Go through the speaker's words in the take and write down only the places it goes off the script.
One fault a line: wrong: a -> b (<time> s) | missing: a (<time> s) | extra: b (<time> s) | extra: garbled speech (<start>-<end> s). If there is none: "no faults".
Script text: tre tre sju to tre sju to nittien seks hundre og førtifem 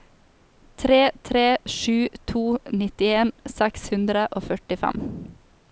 missing: tre sju to (2.4 s)